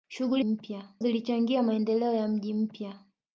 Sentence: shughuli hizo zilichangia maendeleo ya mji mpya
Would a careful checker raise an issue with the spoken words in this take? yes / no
yes